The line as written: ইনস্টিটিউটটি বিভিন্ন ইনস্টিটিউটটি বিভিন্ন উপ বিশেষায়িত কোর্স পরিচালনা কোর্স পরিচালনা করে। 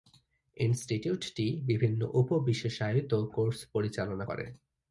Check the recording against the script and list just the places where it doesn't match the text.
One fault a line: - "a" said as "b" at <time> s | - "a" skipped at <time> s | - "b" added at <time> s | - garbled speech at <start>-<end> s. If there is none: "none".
- "ইনস্টিটিউটটি বিভিন্ন" skipped at 2.0 s
- "কোর্স পরিচালনা" skipped at 4.2 s